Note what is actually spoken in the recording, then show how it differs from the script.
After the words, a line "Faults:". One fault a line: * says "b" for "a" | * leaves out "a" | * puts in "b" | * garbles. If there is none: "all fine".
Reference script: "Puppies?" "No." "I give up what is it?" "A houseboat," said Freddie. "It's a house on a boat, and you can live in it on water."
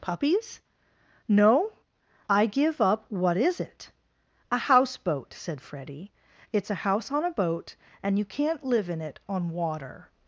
"Puppies?" "No." "I give up what is it?" "A houseboat," said Freddie. "It's a house on a boat, and you can't live in it on water."
Faults:
* says "can't" for "can"